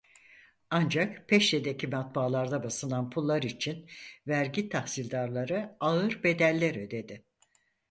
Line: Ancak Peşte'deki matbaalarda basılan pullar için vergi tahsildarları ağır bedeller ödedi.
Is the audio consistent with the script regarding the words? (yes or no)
yes